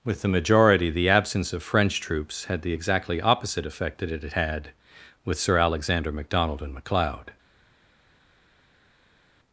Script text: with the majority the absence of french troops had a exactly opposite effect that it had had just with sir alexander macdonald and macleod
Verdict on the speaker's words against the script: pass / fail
fail